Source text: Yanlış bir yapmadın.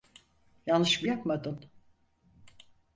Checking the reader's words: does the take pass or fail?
pass